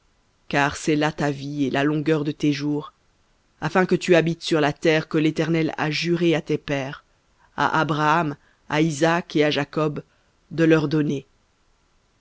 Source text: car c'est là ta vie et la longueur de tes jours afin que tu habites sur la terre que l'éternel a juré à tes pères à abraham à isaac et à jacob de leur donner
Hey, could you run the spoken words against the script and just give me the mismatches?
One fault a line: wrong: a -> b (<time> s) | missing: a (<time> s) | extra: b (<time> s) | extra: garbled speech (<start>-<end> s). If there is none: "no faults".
no faults